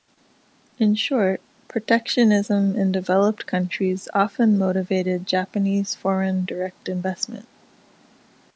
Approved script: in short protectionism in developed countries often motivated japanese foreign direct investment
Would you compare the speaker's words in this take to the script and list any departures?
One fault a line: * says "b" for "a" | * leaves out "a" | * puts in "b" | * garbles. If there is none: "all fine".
all fine